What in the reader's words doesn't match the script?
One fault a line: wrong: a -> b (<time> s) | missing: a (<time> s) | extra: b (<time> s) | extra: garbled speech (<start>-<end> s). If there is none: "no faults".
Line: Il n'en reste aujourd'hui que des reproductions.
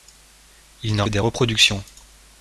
missing: reste aujourd'hui que (1.1 s)